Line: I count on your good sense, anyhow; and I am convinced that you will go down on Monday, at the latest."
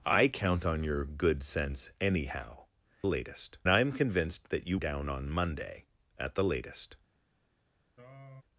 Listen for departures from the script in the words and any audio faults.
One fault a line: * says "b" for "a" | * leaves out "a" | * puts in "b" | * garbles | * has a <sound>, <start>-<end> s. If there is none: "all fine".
* says "latest" for "and"
* leaves out "will go"
* has a throat clearing, 8.0-8.4 s